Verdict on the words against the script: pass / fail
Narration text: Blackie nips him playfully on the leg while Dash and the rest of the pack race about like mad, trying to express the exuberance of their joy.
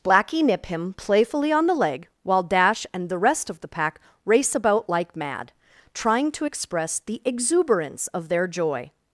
fail